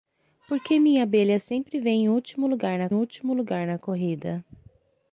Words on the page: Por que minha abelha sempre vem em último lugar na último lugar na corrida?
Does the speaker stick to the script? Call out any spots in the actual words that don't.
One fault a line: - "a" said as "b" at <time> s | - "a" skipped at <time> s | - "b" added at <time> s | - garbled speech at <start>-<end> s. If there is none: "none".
none